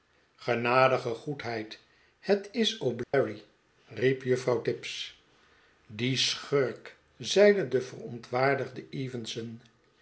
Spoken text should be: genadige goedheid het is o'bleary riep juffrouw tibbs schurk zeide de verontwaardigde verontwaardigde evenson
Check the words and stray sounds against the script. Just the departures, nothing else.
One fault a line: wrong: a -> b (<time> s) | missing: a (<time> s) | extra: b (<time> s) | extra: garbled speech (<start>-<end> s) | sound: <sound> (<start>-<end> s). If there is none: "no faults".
sound: dropout (3.0-3.1 s)
extra: die (5.9 s)
missing: verontwaardigde (8.9 s)